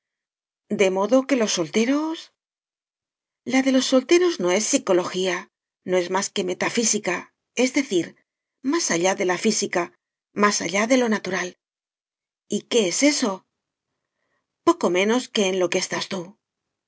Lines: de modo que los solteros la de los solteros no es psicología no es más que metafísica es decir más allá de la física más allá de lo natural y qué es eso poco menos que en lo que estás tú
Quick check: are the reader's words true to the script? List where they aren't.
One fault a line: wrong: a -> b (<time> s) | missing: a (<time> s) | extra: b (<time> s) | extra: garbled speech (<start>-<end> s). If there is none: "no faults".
no faults